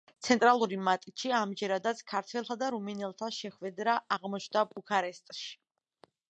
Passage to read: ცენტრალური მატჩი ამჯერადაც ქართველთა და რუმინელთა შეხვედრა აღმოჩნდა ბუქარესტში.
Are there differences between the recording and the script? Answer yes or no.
no